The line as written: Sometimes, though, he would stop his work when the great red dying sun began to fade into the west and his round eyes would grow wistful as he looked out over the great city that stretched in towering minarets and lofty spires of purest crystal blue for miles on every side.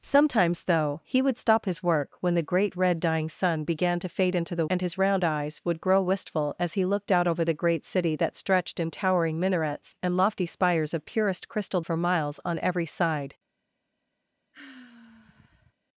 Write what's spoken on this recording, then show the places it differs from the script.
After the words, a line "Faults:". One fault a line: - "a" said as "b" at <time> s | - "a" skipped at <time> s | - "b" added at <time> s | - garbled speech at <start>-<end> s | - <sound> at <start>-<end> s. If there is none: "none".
Sometimes, though, he would stop his work when the great red dying sun began to fade into the and his round eyes would grow wistful as he looked out over the great city that stretched in towering minarets and lofty spires of purest crystal for miles on every side.
Faults:
- "west" skipped at 4.7 s
- "blue" skipped at 11.8 s
- sigh at 14.5-15.7 s